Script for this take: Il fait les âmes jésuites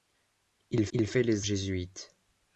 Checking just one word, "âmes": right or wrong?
wrong